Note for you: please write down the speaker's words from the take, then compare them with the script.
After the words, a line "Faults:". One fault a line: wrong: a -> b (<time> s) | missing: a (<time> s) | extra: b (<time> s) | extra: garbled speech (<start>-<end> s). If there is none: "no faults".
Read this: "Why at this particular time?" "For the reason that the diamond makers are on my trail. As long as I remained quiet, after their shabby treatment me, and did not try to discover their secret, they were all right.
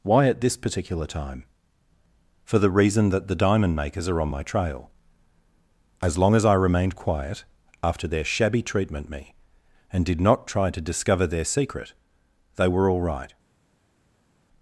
"Why at this particular time?" "For the reason that the diamond makers are on my trail. As long as I remained quiet, after their shabby treatment me, and did not try to discover their secret, they were all right.
Faults:
no faults